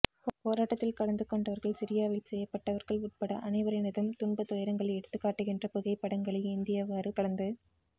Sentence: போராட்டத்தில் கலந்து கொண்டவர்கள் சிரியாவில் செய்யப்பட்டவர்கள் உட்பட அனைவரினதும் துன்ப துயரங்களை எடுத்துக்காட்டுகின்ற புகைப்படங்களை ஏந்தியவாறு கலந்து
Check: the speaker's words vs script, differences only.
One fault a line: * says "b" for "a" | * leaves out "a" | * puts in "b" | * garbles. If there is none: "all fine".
all fine